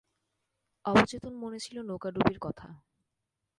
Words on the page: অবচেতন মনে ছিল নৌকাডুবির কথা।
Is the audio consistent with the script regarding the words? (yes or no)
yes